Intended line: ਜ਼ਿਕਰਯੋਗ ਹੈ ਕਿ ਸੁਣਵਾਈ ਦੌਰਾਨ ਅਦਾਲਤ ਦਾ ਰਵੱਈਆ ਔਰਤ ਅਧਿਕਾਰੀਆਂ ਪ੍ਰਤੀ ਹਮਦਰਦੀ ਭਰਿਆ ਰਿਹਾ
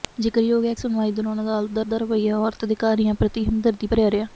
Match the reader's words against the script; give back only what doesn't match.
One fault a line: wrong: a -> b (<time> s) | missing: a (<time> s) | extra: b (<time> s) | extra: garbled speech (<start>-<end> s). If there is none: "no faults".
missing: ਕਿ (0.7 s)
extra: ਦਾ (1.9 s)